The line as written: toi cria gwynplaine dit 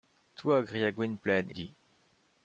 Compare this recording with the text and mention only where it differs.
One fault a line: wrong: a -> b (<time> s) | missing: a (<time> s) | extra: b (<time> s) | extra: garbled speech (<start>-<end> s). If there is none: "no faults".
no faults